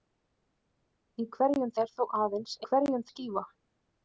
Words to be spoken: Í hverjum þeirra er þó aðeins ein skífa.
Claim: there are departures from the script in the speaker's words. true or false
true